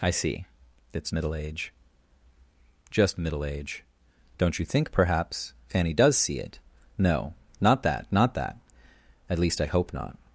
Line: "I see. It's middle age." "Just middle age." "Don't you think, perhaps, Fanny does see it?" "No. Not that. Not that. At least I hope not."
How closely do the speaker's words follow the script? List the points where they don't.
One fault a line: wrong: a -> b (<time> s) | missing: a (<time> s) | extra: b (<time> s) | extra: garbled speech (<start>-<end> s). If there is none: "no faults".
no faults